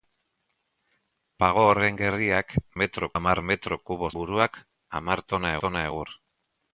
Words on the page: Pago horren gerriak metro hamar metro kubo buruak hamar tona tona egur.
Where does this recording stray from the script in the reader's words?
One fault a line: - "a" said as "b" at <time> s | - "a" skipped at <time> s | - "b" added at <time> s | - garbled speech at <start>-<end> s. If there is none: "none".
none